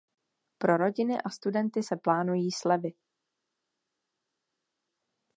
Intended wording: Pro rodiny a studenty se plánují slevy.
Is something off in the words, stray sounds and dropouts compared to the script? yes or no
no